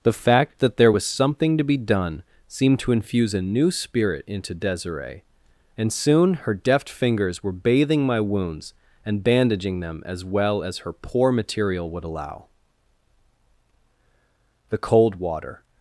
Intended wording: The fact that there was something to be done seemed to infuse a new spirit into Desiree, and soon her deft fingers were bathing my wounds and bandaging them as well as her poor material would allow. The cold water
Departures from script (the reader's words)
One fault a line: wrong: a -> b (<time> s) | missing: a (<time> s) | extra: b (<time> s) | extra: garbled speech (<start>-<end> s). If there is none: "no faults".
no faults